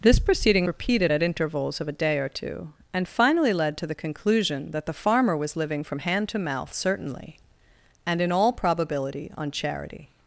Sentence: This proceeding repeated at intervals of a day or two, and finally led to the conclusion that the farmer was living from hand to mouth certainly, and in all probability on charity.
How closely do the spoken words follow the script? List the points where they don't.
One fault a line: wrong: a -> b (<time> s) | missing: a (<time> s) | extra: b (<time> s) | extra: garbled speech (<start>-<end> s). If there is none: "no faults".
no faults